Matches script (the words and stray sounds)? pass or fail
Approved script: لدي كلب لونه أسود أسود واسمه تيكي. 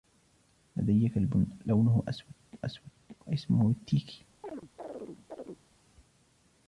fail